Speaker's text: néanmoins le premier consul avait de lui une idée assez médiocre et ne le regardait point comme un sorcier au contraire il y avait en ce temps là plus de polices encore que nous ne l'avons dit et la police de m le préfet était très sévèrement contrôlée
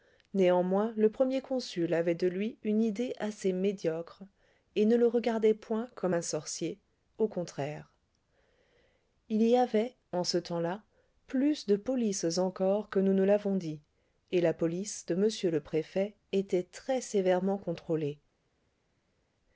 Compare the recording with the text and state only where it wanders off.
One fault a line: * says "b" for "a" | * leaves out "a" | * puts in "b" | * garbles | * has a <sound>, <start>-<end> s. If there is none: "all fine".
all fine